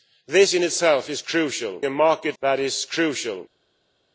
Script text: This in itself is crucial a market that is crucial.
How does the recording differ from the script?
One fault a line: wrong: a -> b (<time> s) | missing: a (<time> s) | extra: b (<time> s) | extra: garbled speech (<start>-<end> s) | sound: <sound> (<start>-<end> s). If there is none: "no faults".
no faults